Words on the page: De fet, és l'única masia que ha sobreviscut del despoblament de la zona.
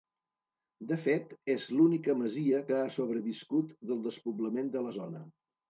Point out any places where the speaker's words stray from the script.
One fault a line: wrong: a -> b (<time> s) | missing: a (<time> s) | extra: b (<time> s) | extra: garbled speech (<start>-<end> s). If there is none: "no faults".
no faults